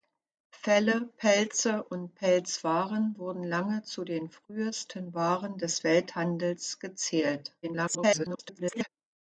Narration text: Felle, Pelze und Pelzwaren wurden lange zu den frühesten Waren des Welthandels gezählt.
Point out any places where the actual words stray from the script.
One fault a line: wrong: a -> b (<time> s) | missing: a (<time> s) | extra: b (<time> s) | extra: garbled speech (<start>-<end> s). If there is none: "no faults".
extra: garbled speech (7.6-8.9 s)